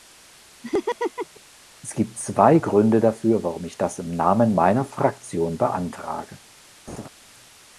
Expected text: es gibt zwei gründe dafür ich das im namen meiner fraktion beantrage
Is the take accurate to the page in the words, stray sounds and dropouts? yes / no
no